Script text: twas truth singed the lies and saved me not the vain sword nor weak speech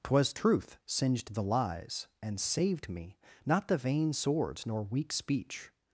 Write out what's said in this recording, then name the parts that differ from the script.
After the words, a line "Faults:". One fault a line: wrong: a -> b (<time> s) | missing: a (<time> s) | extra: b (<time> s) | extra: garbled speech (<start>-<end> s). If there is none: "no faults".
twas truth singed the lies and saved me not the vain swords nor weak speech
Faults:
wrong: sword -> swords (4.1 s)